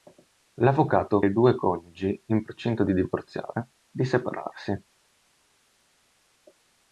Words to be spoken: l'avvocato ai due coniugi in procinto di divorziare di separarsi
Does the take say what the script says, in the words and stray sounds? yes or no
yes